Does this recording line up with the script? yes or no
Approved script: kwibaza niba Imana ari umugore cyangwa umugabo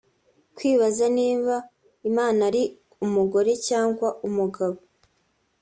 yes